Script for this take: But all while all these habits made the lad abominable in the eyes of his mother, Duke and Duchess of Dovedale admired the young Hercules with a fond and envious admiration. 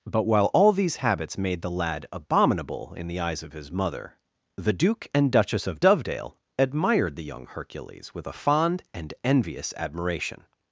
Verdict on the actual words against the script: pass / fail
fail